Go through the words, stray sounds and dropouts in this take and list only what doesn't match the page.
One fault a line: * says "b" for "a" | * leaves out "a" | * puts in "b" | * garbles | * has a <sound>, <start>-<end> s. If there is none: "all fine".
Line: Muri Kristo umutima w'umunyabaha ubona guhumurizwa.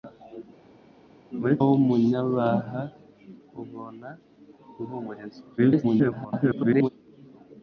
* leaves out "Kristo umutima"
* garbles